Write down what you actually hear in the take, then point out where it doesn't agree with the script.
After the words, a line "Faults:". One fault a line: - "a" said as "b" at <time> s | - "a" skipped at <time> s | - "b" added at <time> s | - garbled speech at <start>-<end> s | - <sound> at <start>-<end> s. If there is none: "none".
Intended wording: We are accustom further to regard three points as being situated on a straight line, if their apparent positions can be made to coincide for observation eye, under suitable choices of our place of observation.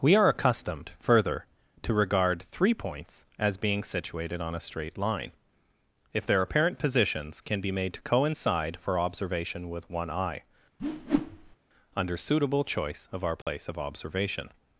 We are accustomed further to regard three points as being situated on a straight line, if their apparent positions can be made to coincide for observation with one eye, under suitable choice of our place of observation.
Faults:
- "accustom" said as "accustomed" at 0.3 s
- "with one" added at 9.7 s
- whoosh at 10.8-11.6 s
- "choices" said as "choice" at 12.6 s
- dropout at 13.4-13.5 s